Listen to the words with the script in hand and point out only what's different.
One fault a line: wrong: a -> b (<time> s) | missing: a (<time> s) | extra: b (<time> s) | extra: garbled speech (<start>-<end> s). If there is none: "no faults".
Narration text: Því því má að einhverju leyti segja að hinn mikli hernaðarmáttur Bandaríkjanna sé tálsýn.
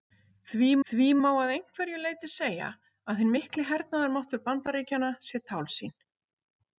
no faults